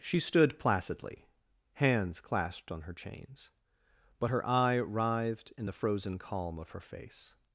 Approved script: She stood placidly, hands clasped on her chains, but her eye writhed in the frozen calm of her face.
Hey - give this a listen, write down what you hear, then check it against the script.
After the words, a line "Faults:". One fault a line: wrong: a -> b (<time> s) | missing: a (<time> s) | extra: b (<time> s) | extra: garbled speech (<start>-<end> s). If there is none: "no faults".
She stood placidly, hands clasped on her chains, but her eye writhed in the frozen calm of her face.
Faults:
no faults